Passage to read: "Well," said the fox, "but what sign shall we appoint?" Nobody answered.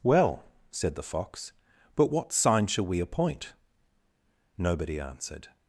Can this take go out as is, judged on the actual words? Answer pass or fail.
pass